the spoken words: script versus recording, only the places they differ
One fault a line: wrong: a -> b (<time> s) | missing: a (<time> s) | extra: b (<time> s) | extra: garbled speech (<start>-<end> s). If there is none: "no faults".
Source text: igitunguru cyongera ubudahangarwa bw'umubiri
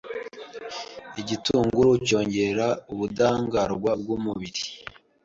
no faults